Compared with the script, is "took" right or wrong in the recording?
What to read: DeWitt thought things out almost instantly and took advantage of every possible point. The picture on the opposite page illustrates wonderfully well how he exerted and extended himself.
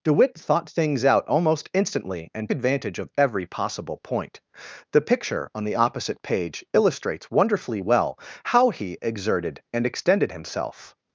wrong